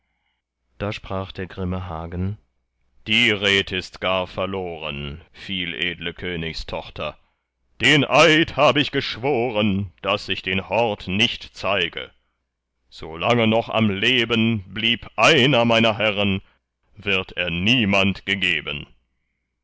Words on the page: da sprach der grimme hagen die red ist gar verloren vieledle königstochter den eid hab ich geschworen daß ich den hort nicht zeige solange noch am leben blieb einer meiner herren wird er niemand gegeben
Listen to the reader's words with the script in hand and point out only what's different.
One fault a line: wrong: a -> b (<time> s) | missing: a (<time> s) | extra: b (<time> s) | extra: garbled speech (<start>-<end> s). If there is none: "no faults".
no faults